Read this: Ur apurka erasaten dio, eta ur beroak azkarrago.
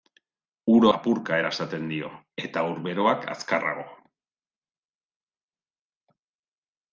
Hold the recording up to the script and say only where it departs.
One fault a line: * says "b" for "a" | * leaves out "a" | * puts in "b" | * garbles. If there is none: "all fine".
all fine